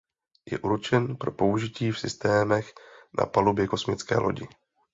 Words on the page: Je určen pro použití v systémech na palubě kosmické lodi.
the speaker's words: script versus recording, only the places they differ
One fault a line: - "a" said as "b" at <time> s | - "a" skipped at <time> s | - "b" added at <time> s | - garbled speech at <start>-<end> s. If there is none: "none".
none